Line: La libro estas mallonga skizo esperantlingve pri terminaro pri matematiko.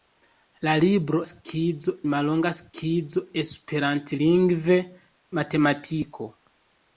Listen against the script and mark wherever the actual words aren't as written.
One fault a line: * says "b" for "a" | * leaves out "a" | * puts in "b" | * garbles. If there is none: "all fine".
* says "skizo" for "estas"
* leaves out "pri terminaro pri"